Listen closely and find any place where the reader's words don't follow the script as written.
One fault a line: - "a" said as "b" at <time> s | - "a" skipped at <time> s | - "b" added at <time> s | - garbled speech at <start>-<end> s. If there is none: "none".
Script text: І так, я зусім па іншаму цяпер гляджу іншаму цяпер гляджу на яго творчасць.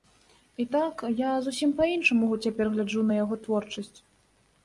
- "іншаму цяпер гляджу" skipped at 3.0 s